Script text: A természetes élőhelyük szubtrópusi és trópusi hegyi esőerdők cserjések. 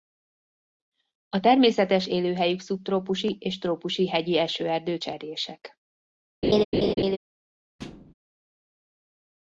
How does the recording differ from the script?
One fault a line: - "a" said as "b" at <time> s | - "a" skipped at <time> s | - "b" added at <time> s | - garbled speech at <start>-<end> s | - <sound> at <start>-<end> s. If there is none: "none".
- laugh at 6.4-7.2 s
- thud at 7.8-8.1 s